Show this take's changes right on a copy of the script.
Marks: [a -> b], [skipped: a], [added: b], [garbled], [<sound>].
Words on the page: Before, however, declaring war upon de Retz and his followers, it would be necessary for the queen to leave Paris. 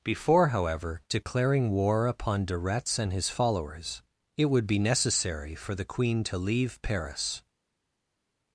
Before, however, declaring war upon de Retz and his followers, it would be necessary for the queen to leave Paris.